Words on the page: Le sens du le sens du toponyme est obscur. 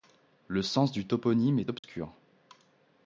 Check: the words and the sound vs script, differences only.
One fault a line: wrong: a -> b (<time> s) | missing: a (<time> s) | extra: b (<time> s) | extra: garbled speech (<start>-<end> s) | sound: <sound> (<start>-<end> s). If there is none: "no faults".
missing: le sens du (1.1 s)
sound: dropout (1.8-1.8 s)